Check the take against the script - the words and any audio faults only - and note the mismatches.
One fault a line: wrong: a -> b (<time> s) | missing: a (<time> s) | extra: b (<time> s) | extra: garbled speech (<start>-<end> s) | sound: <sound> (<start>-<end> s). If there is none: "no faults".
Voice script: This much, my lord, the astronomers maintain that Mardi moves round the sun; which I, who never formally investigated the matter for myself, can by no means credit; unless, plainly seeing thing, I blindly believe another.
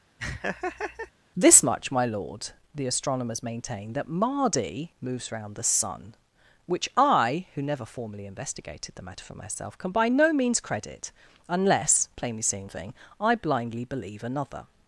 sound: laugh (0.2-1.1 s)